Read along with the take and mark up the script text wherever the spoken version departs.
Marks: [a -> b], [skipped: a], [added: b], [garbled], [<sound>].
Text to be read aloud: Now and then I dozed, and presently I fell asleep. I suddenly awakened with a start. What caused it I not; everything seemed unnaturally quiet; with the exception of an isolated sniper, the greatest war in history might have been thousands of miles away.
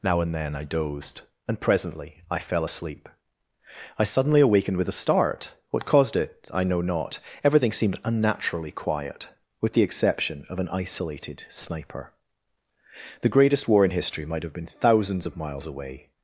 Now and then I dozed, and presently I fell asleep. I suddenly awakened with a start. What caused it I [added: know] not; everything seemed unnaturally quiet; with the exception of an isolated sniper, the greatest war in history might have been thousands of miles away.